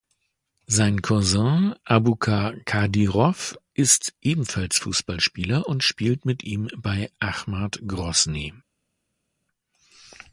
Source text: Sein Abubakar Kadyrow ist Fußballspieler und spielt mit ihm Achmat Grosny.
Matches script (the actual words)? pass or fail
fail